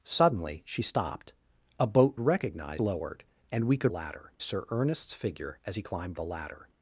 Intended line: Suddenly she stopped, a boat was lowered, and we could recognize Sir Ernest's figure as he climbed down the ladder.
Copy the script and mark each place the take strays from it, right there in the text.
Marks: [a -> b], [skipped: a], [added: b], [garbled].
Suddenly she stopped, a boat [was -> recognize] lowered, and we could [recognize -> ladder] Sir Ernest's figure as he climbed [skipped: down] the ladder.